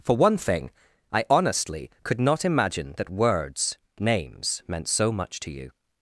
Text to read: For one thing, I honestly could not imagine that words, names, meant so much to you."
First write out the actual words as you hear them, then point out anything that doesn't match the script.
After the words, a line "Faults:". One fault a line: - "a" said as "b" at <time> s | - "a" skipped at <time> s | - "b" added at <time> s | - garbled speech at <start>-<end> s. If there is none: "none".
For one thing, I honestly could not imagine that words, names, meant so much to you."
Faults:
none